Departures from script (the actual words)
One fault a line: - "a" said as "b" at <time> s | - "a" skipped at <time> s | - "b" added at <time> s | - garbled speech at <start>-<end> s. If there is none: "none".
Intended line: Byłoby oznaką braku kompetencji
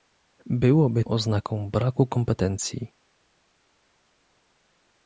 none